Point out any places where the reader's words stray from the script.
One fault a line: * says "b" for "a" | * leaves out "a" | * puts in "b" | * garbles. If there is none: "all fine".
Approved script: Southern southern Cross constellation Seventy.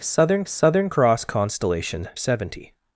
all fine